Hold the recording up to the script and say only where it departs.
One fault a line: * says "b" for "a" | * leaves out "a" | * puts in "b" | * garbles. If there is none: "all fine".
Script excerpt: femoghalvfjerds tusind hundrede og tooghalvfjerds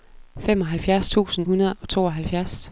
all fine